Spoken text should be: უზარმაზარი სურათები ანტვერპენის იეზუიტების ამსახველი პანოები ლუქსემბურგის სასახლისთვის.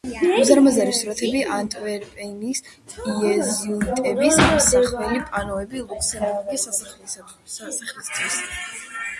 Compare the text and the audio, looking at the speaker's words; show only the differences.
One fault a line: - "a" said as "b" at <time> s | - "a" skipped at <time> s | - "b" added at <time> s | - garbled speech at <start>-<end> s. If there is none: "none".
none